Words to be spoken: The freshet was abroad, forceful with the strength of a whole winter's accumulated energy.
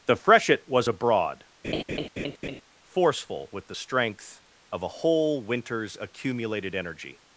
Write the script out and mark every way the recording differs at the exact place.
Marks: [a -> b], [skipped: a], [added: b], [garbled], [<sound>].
The freshet was abroad, [laugh] forceful with the strength of a whole winter's accumulated energy.